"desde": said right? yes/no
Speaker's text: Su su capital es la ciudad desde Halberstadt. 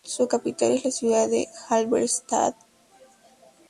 no